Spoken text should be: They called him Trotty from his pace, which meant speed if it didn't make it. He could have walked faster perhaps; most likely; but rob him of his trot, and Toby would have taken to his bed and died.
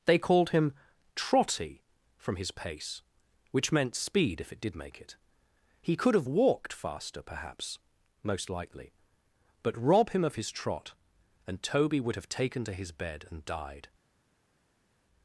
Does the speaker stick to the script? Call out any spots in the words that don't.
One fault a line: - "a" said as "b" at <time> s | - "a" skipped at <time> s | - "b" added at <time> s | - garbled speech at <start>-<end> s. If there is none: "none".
- "didn't" said as "did" at 4.6 s